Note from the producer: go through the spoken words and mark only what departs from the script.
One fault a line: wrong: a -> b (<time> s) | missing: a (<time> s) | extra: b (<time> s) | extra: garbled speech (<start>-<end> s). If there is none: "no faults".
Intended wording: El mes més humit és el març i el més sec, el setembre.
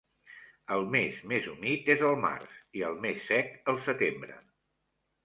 no faults